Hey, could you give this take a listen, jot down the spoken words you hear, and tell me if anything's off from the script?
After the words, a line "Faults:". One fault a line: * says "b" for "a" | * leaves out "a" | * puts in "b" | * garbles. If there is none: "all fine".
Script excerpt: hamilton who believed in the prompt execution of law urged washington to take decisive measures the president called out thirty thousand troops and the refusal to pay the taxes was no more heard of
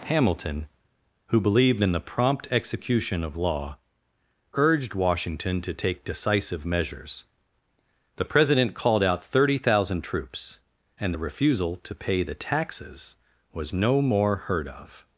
hamilton who believed in the prompt execution of law urged washington to take decisive measures the president called out thirty thousand troops and the refusal to pay the taxes was no more heard of
Faults:
all fine